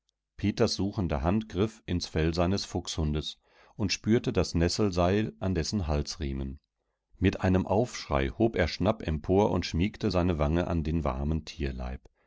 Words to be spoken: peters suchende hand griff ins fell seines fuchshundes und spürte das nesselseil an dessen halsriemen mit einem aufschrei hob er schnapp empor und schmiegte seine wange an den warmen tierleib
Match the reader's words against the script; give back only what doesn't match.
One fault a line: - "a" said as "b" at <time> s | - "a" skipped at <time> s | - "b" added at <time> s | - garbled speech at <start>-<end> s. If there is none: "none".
none